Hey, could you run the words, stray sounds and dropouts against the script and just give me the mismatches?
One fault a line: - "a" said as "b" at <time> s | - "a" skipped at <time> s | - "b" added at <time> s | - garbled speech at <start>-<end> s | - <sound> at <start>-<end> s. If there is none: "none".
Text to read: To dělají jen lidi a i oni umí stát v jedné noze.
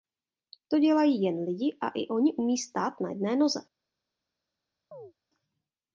- "v" said as "na" at 3.0 s
- chirp at 4.9-5.1 s